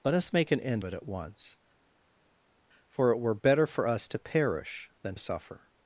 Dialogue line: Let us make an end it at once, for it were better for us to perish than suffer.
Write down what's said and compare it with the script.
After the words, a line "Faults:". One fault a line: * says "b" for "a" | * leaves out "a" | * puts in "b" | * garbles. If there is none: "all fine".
Let us make an end it at once, for it were better for us to perish than suffer.
Faults:
all fine